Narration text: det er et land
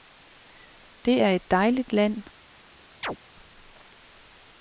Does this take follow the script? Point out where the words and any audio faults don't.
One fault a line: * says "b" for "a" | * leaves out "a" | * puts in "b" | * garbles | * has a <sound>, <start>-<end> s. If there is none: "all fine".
* puts in "dejligt"
* has a chirp, 3.0-3.2 s